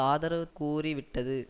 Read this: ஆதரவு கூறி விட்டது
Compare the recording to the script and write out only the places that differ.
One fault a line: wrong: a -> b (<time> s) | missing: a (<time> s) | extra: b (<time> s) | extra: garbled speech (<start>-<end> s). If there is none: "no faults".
no faults